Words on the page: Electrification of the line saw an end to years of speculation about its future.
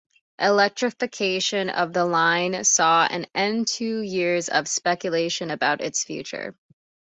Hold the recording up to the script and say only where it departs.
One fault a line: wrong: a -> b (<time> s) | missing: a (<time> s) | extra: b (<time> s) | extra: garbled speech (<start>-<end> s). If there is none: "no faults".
no faults